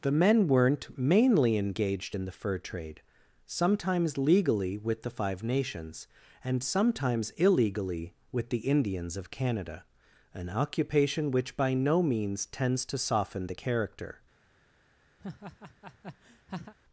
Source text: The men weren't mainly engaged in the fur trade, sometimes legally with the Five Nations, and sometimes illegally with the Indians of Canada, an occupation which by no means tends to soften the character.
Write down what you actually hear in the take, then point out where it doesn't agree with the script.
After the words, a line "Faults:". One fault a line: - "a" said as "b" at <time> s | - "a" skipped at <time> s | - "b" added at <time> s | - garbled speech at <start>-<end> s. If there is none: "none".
The men weren't mainly engaged in the fur trade, sometimes legally with the Five Nations, and sometimes illegally with the Indians of Canada, an occupation which by no means tends to soften the character.
Faults:
none